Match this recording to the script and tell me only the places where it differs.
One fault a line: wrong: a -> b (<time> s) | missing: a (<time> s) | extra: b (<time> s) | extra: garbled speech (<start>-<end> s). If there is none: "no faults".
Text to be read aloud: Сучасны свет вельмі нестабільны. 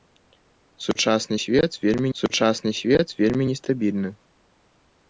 extra: сучасны свет вельмі (2.2 s)